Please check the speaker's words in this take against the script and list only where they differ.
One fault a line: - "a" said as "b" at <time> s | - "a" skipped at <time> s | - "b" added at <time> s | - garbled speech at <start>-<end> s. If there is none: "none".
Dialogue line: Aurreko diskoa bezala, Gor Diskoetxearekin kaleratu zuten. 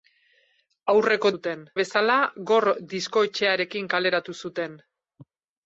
- "diskoa" said as "zuten" at 1.3 s